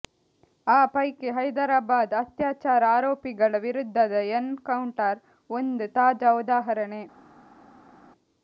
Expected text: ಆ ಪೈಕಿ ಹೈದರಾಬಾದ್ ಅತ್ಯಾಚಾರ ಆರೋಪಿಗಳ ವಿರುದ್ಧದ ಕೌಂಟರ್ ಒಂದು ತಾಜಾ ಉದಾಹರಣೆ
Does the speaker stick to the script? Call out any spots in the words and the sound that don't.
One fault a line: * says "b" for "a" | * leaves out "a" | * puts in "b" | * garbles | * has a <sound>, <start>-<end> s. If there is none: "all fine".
* puts in "ಎನ್"